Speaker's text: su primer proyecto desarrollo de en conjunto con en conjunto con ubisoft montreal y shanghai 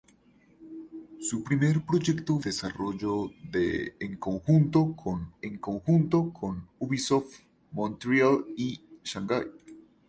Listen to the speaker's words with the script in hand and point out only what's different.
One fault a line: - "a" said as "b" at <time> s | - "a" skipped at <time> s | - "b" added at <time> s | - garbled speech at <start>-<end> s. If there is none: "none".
none